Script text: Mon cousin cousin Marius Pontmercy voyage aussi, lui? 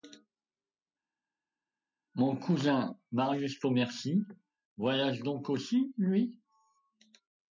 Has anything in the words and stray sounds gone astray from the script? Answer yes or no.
yes